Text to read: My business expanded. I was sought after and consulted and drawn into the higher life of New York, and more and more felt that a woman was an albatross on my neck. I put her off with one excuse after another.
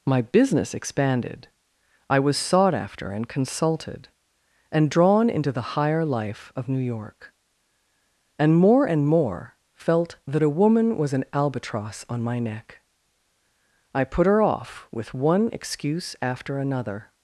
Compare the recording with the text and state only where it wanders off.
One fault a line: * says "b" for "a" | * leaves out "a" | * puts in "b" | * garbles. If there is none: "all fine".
all fine